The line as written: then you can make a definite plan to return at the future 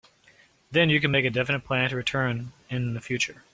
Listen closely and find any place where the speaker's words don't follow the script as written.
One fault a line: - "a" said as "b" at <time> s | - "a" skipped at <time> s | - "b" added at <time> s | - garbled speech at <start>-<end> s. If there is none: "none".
- "at" said as "in" at 2.7 s